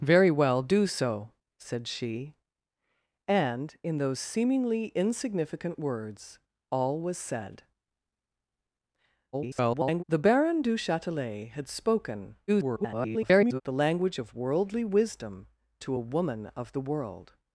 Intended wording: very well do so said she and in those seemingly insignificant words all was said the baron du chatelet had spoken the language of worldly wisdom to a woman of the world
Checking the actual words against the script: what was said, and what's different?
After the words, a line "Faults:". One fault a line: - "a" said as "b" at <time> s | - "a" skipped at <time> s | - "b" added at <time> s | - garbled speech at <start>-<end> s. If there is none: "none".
very well do so said she and in those seemingly insignificant words all was said [garbled] the baron du chatelet had spoken [garbled] the language of worldly wisdom to a woman of the world
Faults:
- garbled speech at 9.3-10.0 s
- garbled speech at 12.5-13.6 s